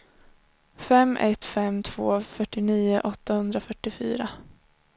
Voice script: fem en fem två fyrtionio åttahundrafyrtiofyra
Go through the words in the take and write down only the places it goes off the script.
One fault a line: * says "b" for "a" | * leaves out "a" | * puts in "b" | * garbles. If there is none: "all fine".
* says "ett" for "en"